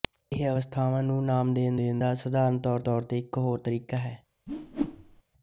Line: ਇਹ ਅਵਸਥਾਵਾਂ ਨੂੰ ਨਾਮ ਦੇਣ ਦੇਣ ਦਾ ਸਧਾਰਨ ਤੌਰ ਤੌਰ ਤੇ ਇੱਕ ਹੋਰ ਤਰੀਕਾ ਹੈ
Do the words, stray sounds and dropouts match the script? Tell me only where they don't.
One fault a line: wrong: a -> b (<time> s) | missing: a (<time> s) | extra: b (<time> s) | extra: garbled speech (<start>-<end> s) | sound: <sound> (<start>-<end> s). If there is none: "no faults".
sound: whoosh (4.5-5.2 s)